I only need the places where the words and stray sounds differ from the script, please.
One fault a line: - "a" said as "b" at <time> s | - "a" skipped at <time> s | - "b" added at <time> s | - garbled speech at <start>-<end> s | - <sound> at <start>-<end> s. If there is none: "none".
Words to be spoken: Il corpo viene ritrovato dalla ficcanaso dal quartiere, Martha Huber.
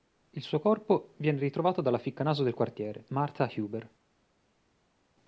- "suo" added at 0.4 s
- "dal" said as "del" at 2.4 s